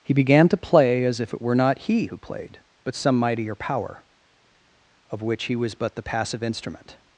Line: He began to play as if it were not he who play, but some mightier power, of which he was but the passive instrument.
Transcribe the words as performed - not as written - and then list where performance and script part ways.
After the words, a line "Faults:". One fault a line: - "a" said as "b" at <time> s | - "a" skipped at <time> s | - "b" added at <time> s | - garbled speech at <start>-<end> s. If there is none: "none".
He began to play as if it were not he who played, but some mightier power, of which he was but the passive instrument.
Faults:
- "play" said as "played" at 2.2 s